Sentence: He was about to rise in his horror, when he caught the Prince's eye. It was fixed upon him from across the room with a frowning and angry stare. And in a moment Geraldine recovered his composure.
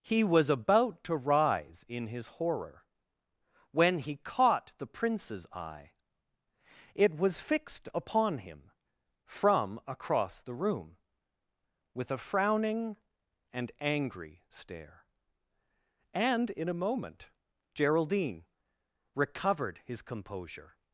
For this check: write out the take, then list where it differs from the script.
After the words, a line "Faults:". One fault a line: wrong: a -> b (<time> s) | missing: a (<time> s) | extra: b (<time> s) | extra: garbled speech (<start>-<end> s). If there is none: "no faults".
He was about to rise in his horror, when he caught the Prince's eye. It was fixed upon him from across the room with a frowning and angry stare. And in a moment Geraldine recovered his composure.
Faults:
no faults